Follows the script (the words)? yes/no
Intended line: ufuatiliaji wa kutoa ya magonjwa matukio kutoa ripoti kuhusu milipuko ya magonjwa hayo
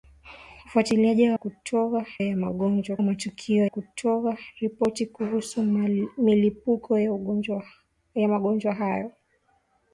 yes